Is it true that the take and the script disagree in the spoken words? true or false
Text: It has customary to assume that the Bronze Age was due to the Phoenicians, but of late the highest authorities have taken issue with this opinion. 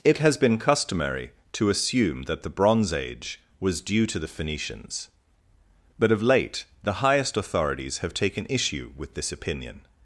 true